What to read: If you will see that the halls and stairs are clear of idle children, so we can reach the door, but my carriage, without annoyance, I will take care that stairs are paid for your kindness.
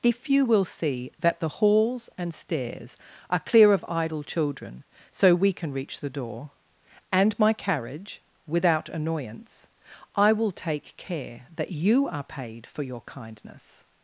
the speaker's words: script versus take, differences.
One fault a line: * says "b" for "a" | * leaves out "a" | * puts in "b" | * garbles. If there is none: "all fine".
* says "and" for "but"
* says "you" for "stairs"